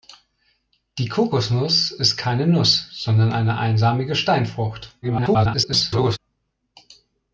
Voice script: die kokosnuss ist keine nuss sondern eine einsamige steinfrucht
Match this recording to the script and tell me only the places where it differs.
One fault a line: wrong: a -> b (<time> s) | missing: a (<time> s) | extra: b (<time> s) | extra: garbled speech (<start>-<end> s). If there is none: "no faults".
extra: garbled speech (5.0-6.2 s)